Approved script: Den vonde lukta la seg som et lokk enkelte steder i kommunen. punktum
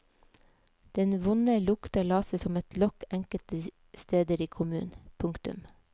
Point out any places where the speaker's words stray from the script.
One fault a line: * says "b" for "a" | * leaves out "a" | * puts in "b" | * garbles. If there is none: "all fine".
all fine